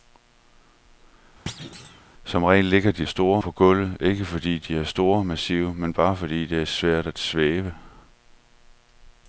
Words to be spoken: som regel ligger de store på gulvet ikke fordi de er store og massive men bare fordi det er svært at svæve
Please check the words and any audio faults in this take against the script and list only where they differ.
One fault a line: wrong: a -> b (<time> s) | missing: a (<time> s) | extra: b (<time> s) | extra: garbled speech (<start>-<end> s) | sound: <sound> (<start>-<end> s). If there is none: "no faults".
sound: thud (1.5-2.0 s)